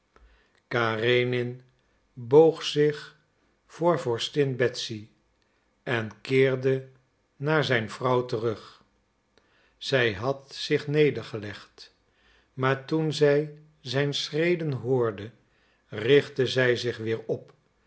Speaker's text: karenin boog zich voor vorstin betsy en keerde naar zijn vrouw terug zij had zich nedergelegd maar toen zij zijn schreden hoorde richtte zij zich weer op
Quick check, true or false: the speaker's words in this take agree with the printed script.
true